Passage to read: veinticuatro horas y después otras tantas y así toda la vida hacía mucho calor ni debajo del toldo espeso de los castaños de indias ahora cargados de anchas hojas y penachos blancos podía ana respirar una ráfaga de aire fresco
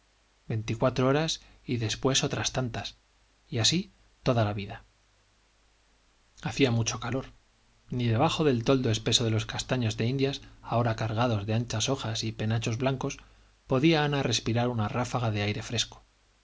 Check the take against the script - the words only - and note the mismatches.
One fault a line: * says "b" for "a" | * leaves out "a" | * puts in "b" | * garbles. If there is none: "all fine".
all fine